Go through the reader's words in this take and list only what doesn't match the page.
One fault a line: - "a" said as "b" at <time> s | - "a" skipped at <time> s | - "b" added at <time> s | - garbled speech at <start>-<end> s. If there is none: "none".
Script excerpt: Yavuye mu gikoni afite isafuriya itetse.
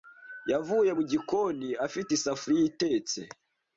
none